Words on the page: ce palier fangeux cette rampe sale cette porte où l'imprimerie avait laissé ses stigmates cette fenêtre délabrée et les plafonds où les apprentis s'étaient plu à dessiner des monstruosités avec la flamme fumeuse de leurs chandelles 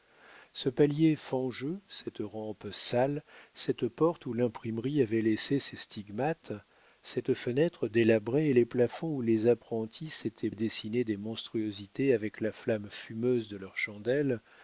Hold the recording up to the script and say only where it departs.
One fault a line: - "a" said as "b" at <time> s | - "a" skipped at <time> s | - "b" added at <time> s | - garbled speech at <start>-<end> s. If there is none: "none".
- "plu" skipped at 10.5 s